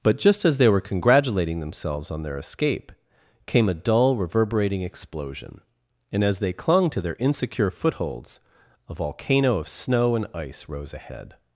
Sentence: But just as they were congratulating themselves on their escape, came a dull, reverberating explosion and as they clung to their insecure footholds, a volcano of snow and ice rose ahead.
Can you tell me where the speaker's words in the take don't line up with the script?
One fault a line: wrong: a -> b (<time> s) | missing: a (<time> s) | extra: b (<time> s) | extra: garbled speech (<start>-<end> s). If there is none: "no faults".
no faults